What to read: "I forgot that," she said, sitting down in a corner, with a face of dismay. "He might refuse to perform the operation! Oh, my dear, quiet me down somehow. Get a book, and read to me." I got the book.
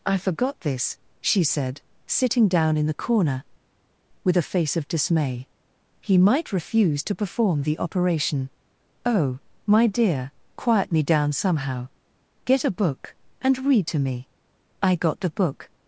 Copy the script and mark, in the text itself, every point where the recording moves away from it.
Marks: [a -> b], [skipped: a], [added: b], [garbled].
"I forgot [that," -> this] she said, sitting down in [a -> the] corner, with a face of dismay. "He might refuse to perform the operation! Oh, my dear, quiet me down somehow. Get a book, and read to me." I got the book.